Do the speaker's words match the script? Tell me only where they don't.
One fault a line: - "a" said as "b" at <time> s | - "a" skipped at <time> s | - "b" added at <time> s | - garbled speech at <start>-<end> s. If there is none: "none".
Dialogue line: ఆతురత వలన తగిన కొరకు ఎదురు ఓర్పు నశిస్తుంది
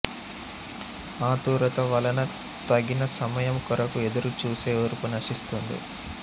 - "సమయం" added at 3.2 s
- "చూసే" added at 4.4 s